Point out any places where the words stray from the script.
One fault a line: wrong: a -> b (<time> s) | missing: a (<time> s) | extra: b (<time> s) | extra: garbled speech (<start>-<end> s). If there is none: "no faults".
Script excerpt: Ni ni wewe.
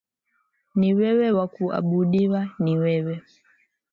extra: wewe wa kuabudiwa (0.9 s)